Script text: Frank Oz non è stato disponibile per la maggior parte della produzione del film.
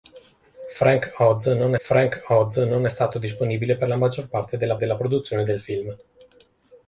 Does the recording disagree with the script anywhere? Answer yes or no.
yes